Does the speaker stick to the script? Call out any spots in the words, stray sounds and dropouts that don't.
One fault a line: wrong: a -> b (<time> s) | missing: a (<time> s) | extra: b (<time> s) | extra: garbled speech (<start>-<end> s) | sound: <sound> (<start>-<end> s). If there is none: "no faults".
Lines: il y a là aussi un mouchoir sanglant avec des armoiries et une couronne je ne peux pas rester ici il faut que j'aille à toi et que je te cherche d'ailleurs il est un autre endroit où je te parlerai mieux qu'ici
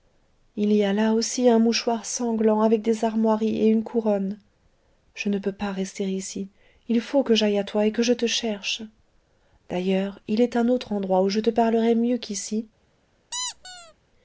sound: squeak (13.3-13.9 s)